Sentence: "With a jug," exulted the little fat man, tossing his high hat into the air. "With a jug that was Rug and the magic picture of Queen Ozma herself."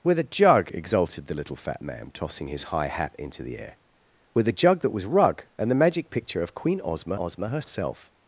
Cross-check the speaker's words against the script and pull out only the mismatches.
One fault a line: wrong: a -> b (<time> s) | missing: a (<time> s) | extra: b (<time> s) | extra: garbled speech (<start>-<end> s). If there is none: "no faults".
extra: Ozma (7.2 s)